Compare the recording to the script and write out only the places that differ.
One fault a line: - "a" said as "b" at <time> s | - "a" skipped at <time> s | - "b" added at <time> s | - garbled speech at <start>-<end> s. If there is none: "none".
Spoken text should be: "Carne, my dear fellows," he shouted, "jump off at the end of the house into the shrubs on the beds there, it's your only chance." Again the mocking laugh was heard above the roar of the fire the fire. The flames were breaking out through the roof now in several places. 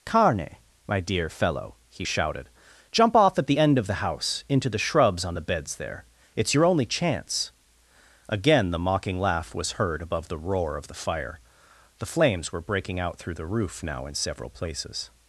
- "fellows" said as "fellow" at 1.3 s
- "fire The" skipped at 12.1 s